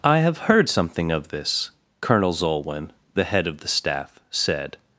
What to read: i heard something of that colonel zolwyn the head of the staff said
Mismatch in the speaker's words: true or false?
true